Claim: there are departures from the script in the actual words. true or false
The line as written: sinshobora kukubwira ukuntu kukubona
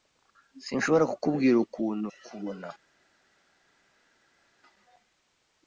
false